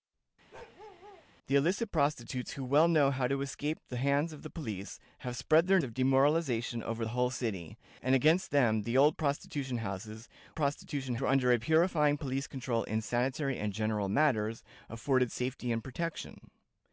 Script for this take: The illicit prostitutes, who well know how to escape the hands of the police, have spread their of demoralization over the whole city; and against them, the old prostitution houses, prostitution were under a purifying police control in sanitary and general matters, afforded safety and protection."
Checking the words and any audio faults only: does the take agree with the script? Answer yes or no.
no